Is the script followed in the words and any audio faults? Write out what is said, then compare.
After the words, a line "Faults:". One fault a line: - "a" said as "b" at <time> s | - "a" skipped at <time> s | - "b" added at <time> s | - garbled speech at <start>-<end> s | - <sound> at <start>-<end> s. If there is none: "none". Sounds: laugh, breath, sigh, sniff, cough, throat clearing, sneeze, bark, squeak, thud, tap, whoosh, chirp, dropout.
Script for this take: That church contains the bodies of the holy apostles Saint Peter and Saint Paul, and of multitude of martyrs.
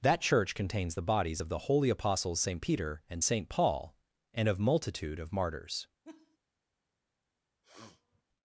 That church contains the bodies of the holy apostles Saint Peter and Saint Paul, and of multitude of martyrs.
Faults:
- laugh at 6.0-6.4 s
- sniff at 7.6-8.2 s